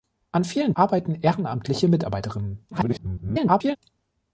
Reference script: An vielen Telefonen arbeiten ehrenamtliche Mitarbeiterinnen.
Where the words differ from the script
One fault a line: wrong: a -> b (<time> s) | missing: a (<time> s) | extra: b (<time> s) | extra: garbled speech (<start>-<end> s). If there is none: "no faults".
missing: Telefonen (0.7 s)
extra: garbled speech (2.7-3.8 s)